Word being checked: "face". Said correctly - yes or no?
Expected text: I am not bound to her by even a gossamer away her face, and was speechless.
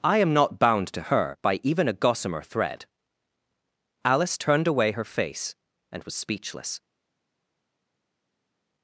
yes